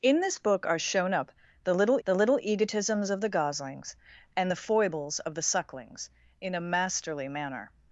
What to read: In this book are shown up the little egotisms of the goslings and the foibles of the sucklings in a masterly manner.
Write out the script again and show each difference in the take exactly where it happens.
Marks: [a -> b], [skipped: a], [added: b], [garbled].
In this book are shown up the little [added: the little] egotisms of the goslings and the foibles of the sucklings in a masterly manner.